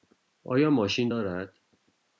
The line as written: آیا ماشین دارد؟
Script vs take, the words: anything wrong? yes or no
no